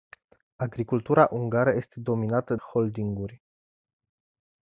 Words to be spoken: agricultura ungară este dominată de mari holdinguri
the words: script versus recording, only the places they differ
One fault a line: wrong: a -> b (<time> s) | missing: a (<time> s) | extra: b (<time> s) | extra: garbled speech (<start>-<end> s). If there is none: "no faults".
missing: de mari (2.5 s)